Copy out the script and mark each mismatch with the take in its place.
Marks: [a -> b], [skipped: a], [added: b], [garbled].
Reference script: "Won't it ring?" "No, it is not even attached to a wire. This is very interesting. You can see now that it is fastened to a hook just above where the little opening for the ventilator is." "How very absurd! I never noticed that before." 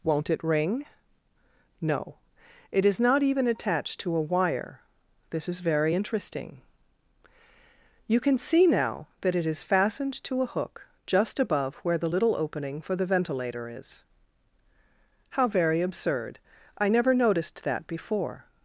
"Won't it ring?" "No, it is not even attached to a wire. This is very interesting. You can see now that it is fastened to a hook just above where the little opening for the ventilator is." "How very absurd! I never noticed that before."